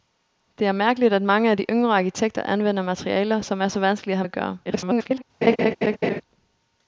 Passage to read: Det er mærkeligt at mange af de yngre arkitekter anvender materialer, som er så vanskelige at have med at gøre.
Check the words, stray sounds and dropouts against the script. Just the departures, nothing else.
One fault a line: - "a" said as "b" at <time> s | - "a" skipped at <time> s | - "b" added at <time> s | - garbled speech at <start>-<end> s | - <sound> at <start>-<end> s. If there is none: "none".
- "med" skipped at 4.3 s
- garbled speech at 4.7-5.2 s
- laugh at 5.4-6.2 s